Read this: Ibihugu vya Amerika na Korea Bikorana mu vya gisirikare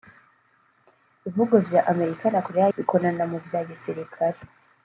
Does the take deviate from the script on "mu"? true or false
false